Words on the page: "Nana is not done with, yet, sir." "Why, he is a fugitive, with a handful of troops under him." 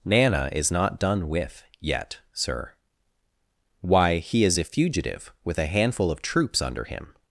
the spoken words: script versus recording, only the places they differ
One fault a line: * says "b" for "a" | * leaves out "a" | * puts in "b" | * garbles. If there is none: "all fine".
all fine